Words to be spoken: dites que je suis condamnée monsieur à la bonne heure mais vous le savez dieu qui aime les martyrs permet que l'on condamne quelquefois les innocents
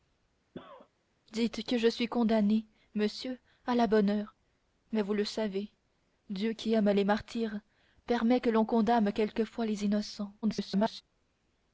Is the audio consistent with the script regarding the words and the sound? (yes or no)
no